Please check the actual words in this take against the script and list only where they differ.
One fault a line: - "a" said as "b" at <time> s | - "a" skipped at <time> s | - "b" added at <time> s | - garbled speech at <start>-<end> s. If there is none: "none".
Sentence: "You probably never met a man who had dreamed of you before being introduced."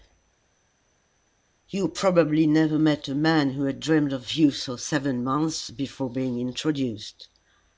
- "for seven months" added at 4.5 s